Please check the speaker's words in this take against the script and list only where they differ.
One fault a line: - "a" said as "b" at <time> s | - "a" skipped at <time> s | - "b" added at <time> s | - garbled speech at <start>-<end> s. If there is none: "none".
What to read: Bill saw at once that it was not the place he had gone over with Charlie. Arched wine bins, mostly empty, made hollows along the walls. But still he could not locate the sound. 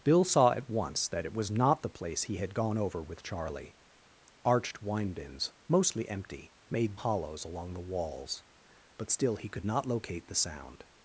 none